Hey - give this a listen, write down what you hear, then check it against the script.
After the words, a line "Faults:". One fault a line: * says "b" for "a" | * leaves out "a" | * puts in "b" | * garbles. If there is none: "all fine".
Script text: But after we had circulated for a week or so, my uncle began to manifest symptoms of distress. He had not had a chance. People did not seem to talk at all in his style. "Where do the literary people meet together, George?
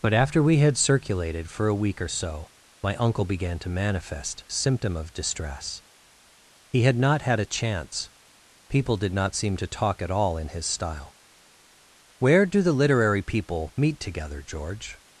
But after we had circulated for a week or so, my uncle began to manifest symptom of distress. He had not had a chance. People did not seem to talk at all in his style. "Where do the literary people meet together, George?
Faults:
* says "symptom" for "symptoms"